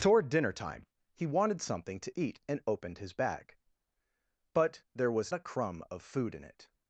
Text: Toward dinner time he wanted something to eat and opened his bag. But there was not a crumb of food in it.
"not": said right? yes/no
no